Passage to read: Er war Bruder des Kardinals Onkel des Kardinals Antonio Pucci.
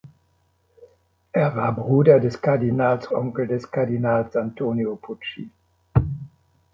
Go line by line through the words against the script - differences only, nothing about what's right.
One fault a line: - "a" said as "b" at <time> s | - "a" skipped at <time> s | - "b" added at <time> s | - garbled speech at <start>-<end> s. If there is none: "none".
none